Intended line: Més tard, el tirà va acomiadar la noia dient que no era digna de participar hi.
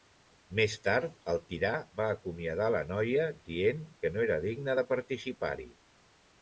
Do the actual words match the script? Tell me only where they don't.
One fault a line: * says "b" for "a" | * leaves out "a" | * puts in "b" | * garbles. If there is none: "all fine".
all fine